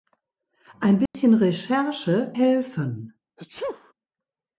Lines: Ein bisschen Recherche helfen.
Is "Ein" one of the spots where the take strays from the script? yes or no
no